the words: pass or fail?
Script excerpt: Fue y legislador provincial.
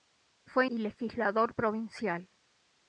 pass